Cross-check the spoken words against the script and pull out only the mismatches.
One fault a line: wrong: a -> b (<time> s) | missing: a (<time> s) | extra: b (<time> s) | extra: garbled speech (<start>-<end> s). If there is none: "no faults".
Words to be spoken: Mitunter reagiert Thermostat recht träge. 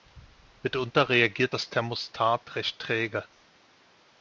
extra: das (1.5 s)